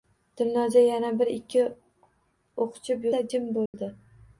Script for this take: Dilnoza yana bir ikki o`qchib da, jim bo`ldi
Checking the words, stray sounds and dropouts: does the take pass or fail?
fail